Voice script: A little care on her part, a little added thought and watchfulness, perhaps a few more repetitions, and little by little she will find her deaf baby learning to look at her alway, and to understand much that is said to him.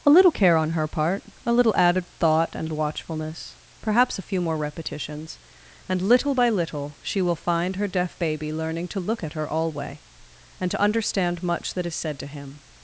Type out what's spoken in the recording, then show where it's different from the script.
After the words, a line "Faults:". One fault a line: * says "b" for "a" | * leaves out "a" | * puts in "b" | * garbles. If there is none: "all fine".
A little care on her part, a little added thought and watchfulness, perhaps a few more repetitions, and little by little she will find her deaf baby learning to look at her alway, and to understand much that is said to him.
Faults:
all fine